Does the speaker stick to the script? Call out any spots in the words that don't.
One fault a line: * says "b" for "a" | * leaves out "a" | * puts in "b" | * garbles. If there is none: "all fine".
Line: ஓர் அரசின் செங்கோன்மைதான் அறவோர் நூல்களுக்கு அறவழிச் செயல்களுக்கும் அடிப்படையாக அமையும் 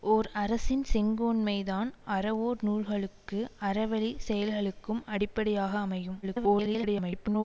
* garbles